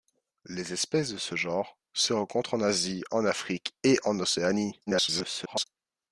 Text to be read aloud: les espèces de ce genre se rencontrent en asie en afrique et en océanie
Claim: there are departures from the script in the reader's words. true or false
true